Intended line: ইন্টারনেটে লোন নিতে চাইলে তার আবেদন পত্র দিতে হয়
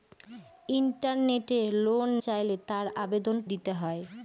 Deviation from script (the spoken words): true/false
true